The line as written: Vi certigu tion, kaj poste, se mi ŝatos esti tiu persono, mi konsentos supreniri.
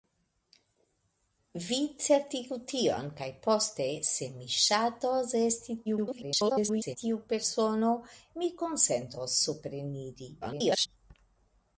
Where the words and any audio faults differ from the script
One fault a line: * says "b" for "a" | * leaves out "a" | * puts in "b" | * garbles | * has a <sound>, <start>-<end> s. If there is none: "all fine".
* garbles
* garbles